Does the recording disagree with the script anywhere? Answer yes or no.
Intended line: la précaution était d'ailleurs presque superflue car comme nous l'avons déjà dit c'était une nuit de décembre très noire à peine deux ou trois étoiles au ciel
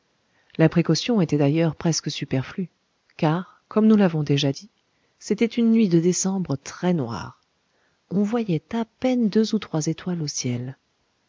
yes